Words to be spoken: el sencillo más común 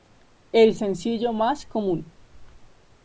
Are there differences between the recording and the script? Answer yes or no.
no